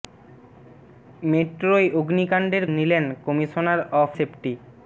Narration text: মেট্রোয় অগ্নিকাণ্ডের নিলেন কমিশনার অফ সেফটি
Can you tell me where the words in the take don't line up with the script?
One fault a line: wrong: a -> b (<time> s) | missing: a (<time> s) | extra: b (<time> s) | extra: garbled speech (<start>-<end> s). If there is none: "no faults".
no faults